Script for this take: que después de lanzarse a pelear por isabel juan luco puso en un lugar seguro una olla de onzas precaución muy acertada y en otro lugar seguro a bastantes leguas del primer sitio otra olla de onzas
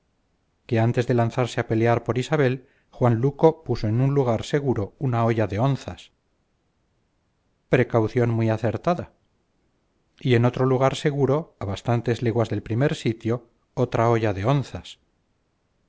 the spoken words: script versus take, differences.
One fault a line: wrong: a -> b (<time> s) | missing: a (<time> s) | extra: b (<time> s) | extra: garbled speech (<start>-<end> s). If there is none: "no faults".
wrong: después -> antes (0.9 s)